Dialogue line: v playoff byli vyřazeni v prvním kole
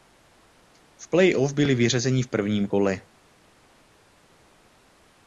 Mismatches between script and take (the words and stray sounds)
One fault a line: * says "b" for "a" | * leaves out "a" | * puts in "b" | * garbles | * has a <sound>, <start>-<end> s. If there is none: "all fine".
all fine